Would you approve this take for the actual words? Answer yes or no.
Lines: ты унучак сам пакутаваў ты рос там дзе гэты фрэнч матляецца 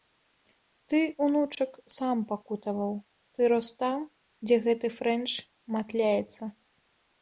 yes